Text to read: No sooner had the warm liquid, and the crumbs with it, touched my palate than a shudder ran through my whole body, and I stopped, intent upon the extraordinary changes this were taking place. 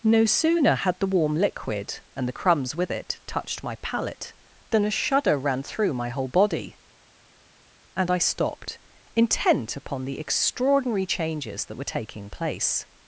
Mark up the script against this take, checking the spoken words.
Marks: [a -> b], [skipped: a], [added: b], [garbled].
No sooner had the warm liquid, and the crumbs with it, touched my palate than a shudder ran through my whole body, and I stopped, intent upon the extraordinary changes [this -> that] were taking place.